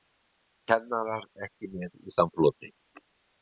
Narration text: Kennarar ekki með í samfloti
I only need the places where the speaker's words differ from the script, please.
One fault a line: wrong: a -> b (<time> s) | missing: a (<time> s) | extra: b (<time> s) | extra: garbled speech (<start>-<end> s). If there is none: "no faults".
no faults